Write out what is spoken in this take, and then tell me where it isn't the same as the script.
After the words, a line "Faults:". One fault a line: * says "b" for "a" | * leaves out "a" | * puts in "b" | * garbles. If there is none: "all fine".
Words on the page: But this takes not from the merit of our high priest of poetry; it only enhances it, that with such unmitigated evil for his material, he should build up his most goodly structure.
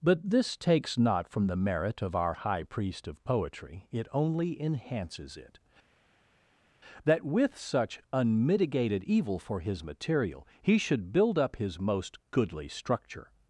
But this takes not from the merit of our high priest of poetry; it only enhances it, that with such unmitigated evil for his material, he should build up his most goodly structure.
Faults:
all fine